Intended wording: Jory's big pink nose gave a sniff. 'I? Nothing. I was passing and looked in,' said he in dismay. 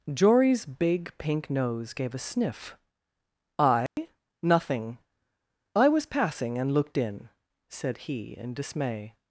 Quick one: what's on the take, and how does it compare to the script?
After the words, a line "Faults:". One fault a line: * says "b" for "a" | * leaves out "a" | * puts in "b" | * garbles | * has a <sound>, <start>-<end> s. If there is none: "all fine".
Jory's big pink nose gave a sniff. 'I? Nothing. I was passing and looked in,' said he in dismay.
Faults:
* has a dropout, 3.9-4.0 s